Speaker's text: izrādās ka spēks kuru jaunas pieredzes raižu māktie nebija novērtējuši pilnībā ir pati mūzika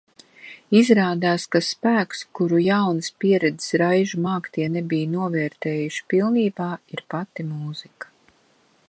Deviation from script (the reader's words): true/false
false